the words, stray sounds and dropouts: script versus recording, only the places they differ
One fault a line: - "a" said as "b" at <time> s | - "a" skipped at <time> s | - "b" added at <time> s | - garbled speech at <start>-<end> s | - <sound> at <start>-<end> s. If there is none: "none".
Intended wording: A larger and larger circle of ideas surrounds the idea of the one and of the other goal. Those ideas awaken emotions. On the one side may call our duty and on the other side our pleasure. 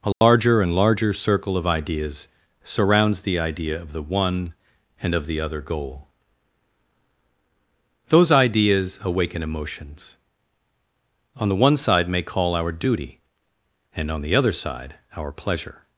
- dropout at 0.1-0.2 s